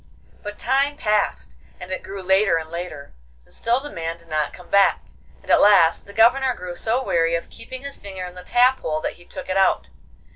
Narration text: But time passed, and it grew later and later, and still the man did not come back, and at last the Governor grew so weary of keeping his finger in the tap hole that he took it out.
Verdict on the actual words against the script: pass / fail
pass